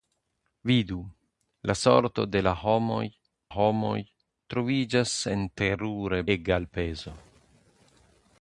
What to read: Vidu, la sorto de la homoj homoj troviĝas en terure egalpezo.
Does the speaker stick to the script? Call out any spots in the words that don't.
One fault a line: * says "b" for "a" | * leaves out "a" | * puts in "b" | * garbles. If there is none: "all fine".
all fine